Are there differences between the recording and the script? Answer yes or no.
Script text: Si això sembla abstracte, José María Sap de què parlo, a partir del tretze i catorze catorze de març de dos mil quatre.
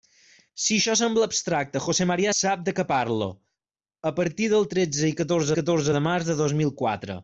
no